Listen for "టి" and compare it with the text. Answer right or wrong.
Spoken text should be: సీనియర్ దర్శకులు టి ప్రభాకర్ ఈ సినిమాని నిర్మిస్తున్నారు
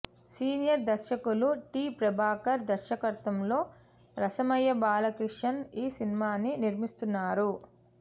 right